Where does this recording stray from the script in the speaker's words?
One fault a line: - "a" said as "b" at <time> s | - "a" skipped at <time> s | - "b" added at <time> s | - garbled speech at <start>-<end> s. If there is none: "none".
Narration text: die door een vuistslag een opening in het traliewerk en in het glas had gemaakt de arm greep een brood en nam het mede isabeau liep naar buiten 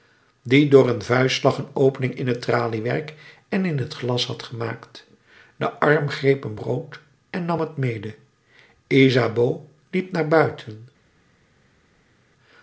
none